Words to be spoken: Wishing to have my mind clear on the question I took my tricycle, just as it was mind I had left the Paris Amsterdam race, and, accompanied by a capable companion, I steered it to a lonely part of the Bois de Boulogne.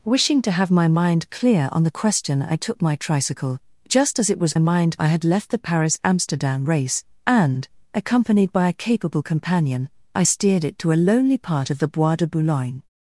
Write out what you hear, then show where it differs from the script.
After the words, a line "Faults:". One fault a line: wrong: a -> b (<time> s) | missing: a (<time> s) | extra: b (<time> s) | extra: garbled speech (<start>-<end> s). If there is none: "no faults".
Wishing to have my mind clear on the question I took my tricycle, just as it was mind I had left the Paris Amsterdam race, and, accompanied by a capable companion, I steered it to a lonely part of the Bois de Boulogne.
Faults:
no faults